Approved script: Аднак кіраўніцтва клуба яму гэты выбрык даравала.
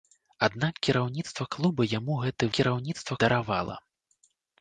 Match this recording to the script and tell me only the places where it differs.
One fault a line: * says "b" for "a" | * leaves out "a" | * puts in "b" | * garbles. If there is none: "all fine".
* says "кіраўніцтва" for "выбрык"